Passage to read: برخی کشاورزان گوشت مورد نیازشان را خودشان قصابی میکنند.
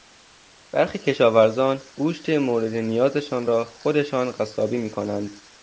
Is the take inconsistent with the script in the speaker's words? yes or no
no